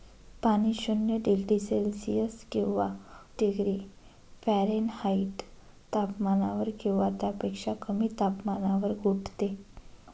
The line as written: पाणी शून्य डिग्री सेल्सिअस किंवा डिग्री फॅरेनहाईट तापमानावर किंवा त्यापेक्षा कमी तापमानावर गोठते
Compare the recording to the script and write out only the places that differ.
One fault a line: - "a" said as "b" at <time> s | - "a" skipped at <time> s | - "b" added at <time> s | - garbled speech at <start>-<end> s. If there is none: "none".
none